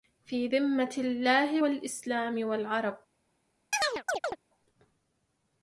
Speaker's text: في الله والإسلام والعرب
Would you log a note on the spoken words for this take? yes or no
yes